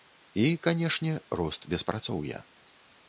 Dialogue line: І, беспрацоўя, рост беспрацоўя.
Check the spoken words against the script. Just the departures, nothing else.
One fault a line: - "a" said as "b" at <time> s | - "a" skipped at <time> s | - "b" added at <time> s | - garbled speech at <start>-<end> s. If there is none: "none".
- "беспрацоўя" said as "канешне" at 0.7 s